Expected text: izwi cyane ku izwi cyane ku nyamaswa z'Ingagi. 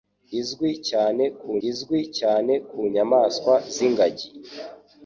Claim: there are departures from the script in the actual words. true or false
false